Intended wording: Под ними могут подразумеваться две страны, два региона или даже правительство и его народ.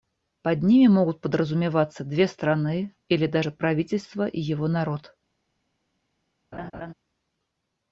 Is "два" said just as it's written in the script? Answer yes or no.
no